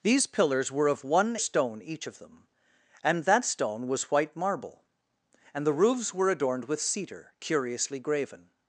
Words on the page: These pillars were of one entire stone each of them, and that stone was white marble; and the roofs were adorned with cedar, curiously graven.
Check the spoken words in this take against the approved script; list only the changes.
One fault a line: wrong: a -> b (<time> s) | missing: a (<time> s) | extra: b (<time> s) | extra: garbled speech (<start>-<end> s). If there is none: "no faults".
missing: entire (1.4 s)